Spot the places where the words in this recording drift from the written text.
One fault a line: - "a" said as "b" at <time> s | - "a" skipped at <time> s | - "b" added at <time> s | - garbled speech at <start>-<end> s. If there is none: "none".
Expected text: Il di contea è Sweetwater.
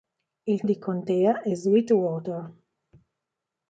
none